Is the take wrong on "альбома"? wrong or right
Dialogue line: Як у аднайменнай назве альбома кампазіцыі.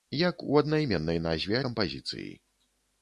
wrong